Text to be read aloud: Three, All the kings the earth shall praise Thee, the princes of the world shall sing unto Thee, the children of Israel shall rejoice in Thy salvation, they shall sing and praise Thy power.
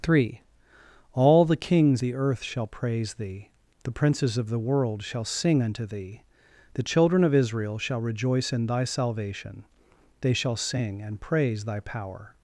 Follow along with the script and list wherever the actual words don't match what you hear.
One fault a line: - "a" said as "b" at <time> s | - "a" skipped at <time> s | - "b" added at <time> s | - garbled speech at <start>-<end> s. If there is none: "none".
none